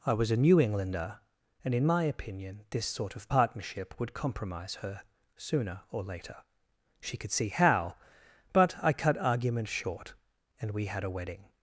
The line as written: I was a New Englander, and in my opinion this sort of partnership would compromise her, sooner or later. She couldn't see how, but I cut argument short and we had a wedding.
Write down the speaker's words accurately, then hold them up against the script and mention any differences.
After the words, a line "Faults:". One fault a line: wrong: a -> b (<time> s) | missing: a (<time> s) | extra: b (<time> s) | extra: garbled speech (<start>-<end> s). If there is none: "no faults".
I was a New Englander, and in my opinion this sort of partnership would compromise her, sooner or later. She could see how, but I cut argument short and we had a wedding.
Faults:
wrong: couldn't -> could (7.2 s)